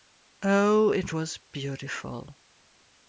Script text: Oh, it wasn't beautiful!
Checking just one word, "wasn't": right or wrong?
wrong